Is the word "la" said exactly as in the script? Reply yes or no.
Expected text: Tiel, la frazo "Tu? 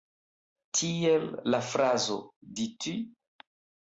yes